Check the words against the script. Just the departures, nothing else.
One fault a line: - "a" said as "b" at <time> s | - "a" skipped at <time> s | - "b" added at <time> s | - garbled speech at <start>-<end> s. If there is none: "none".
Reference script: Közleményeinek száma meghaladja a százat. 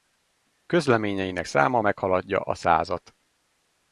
none